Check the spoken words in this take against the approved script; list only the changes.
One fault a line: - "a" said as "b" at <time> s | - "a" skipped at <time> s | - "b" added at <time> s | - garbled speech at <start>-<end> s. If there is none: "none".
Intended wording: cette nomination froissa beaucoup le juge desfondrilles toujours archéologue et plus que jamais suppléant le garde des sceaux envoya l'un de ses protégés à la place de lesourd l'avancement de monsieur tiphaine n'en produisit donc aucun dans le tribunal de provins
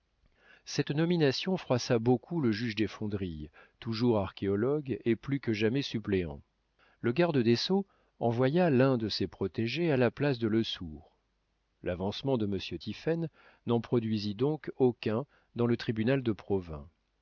none